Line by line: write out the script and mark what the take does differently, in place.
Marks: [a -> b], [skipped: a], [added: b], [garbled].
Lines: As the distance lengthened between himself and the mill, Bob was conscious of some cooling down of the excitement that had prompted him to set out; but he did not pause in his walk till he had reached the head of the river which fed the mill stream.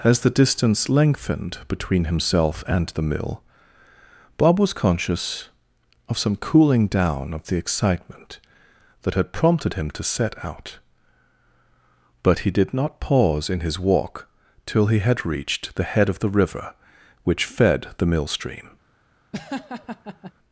As the distance lengthened between himself and the mill, Bob was conscious of some cooling down of the excitement that had prompted him to set out; but he did not pause in his walk till he had reached the head of the river which fed the mill stream.